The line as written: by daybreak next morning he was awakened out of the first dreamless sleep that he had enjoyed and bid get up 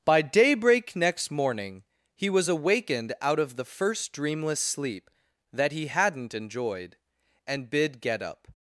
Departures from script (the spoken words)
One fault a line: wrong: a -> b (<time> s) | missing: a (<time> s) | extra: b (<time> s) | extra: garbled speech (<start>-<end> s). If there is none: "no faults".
wrong: had -> hadn't (5.9 s)